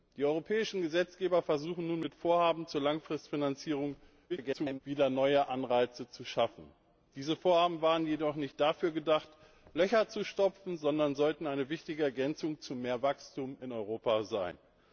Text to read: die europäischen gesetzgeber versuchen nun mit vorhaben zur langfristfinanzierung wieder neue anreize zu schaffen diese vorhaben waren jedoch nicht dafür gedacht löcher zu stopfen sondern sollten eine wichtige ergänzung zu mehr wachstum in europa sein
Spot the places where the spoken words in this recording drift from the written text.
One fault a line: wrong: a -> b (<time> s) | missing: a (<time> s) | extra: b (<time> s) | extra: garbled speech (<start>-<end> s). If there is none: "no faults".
extra: garbled speech (4.3-4.8 s)